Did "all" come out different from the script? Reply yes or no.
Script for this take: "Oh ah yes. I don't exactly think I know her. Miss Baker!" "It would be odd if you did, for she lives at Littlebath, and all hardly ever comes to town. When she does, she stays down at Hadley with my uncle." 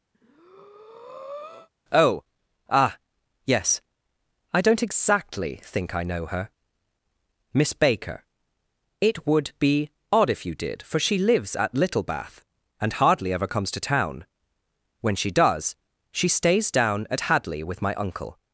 yes